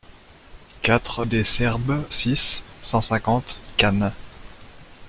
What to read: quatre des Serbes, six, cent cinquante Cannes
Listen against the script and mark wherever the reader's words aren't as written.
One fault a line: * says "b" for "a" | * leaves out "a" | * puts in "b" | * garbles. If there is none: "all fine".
all fine